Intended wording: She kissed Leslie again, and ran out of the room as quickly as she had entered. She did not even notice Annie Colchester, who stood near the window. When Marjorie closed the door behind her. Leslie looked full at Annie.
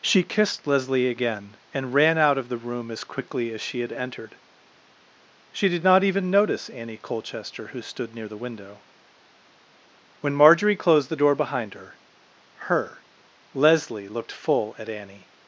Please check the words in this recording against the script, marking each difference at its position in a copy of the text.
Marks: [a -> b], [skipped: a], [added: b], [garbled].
She kissed Leslie again, and ran out of the room as quickly as she had entered. She did not even notice Annie Colchester, who stood near the window. When Marjorie closed the door behind her. [added: her] Leslie looked full at Annie.